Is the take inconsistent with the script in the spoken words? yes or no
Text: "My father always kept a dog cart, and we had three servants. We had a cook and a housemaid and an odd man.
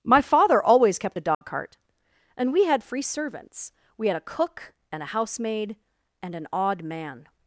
yes